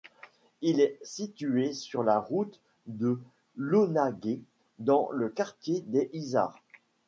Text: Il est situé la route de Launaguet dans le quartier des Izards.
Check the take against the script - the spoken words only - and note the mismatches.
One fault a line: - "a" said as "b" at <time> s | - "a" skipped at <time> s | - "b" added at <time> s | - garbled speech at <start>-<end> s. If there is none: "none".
- "sur" added at 1.7 s